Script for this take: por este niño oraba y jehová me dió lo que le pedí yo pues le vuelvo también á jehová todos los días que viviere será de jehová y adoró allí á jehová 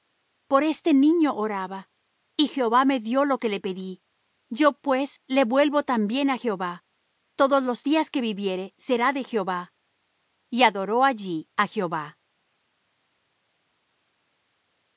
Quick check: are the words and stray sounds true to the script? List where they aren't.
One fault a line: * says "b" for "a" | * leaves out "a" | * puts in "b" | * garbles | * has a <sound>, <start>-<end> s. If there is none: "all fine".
all fine